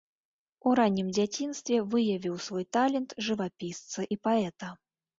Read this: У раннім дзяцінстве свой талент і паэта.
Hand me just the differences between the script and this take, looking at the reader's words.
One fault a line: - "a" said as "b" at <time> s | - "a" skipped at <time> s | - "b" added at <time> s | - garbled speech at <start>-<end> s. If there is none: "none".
- "выявіў" added at 1.9 s
- "жывапісца" added at 3.3 s